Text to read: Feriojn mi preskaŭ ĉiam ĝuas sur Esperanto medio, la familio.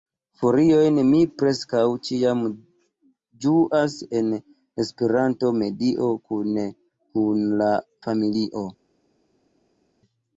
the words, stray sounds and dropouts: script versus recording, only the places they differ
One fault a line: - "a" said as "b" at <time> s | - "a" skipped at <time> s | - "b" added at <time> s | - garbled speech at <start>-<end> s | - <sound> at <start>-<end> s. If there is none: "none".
- "sur" said as "en" at 4.2 s
- "kune kun" added at 6.3 s